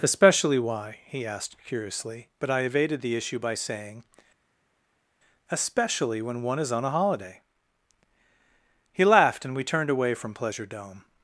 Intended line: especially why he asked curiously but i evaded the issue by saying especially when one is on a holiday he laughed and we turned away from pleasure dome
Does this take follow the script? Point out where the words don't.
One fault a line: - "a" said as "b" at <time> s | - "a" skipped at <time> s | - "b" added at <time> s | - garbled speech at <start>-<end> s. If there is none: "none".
none